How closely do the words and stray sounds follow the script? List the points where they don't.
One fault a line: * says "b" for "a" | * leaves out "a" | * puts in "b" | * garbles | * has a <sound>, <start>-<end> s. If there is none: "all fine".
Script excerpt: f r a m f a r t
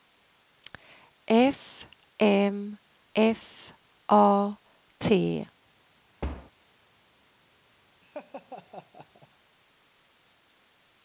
* leaves out "r a"
* leaves out "r"
* has a thud, 6.2-6.5 s
* has a laugh, 8.0-9.3 s